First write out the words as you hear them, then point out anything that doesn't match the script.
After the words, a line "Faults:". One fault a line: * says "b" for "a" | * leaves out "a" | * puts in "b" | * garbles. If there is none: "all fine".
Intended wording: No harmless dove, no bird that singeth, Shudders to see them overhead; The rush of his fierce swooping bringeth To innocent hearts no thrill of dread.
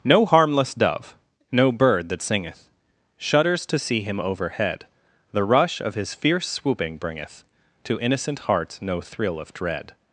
No harmless dove, no bird that singeth, Shudders to see him overhead; The rush of his fierce swooping bringeth To innocent hearts no thrill of dread.
Faults:
* says "him" for "them"